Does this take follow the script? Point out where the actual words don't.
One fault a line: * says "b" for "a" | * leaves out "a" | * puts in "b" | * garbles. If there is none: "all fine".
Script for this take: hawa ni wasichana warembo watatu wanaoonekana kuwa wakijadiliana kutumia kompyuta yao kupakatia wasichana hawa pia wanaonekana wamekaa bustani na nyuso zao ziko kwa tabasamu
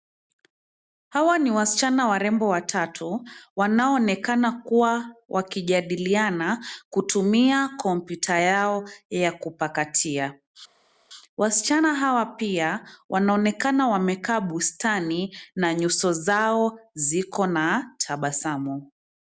* puts in "ya"
* says "na" for "kwa"